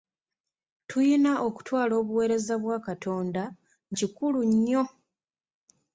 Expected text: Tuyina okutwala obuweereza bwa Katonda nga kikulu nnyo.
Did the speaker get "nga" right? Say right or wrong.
wrong